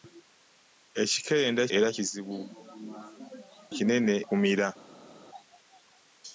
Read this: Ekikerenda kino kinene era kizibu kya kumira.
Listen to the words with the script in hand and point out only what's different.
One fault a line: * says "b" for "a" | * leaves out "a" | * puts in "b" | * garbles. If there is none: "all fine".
* leaves out "kino kinene"
* says "kinene" for "kya"